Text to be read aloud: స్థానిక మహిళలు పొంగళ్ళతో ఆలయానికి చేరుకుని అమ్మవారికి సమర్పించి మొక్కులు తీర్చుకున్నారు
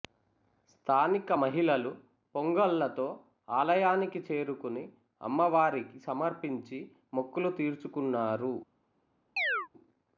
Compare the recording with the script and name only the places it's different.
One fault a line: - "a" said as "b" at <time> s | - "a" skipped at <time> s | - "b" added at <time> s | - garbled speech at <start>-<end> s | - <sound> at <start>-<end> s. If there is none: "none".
- chirp at 9.4-9.7 s